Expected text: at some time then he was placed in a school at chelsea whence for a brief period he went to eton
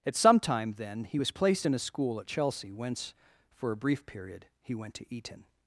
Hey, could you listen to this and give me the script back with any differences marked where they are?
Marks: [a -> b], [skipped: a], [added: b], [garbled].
at some time then he was placed in a school at chelsea whence for a brief period he went to eton